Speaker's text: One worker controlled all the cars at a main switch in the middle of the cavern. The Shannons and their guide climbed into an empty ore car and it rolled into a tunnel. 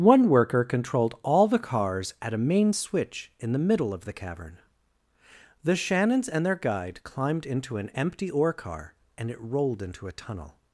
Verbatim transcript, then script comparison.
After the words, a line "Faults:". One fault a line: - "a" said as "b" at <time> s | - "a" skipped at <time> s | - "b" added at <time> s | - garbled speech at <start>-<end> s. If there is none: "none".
One worker controlled all the cars at a main switch in the middle of the cavern. The Shannons and their guide climbed into an empty ore car and it rolled into a tunnel.
Faults:
none